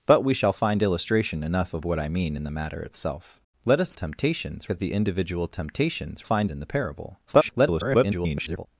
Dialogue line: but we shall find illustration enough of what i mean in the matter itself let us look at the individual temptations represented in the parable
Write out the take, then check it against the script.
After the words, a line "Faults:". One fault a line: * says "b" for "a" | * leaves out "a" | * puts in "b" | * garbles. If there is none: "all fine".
but we shall find illustration enough of what i mean in the matter itself let us temptations at the individual temptations find in the parable [garbled]
Faults:
* says "temptations" for "look"
* says "find" for "represented"
* garbles